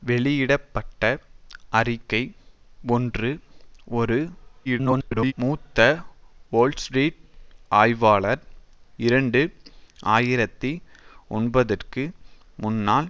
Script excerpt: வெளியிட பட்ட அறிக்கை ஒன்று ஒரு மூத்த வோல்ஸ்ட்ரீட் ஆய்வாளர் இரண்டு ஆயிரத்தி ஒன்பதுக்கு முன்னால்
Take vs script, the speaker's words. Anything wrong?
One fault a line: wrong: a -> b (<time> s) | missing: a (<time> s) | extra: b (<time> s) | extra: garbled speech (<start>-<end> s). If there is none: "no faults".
extra: garbled speech (4.6-5.3 s)